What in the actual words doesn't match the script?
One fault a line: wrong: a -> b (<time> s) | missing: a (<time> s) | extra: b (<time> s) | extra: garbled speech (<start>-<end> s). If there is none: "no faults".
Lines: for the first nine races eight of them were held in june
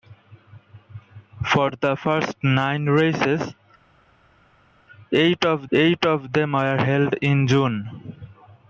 extra: eight of (5.7 s)